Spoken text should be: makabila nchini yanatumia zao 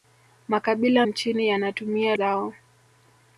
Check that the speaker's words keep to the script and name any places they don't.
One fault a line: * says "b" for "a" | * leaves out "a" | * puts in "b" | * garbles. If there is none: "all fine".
all fine